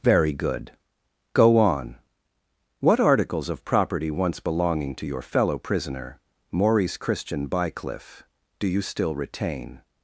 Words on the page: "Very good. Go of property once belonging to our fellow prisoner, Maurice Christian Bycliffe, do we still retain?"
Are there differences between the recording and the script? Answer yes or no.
yes